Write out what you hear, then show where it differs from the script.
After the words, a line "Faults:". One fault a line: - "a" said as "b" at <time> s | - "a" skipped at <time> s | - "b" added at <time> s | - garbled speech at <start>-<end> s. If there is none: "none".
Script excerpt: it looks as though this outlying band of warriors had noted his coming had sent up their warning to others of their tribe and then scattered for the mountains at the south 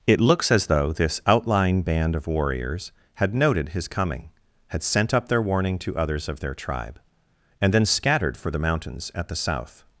it looks as though this outlying band of warriors had noted his coming had sent up their warning to others of their tribe and then scattered for the mountains at the south
Faults:
none